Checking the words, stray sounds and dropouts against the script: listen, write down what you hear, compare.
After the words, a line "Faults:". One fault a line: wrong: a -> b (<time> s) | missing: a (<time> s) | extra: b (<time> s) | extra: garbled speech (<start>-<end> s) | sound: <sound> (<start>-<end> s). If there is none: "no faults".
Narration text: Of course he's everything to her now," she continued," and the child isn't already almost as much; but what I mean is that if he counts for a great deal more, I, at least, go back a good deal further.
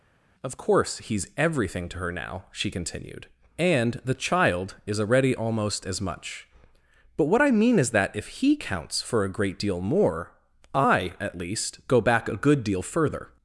Of course he's everything to her now," she continued," and the child is already almost as much; but what I mean is that if he counts for a great deal more, I, at least, go back a good deal further.
Faults:
wrong: isn't -> is (4.9 s)